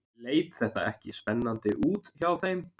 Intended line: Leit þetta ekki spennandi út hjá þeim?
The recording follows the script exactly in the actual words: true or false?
true